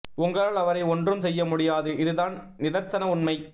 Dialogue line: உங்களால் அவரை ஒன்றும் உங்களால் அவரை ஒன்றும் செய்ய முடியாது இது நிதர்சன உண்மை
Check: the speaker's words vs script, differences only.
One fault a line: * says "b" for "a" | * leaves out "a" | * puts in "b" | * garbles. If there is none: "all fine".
* leaves out "உங்களால் அவரை ஒன்றும்"
* puts in "தான்"